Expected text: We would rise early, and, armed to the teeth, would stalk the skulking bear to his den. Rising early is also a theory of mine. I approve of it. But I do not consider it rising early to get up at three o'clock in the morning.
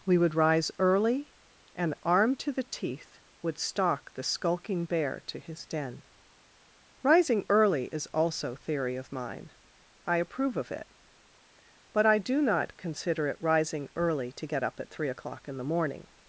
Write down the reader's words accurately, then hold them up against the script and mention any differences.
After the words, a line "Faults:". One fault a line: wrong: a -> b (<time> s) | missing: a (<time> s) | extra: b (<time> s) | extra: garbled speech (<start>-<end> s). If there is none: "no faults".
We would rise early, and, armed to the teeth, would stalk the skulking bear to his den. Rising early is also theory of mine. I approve of it. But I do not consider it rising early to get up at three o'clock in the morning.
Faults:
missing: a (8.5 s)